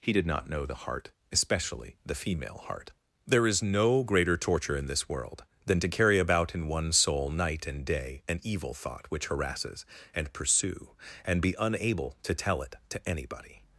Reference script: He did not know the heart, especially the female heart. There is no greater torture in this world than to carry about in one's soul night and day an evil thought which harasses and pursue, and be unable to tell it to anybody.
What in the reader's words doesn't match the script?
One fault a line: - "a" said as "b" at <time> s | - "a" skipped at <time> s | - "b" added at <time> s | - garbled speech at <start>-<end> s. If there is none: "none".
none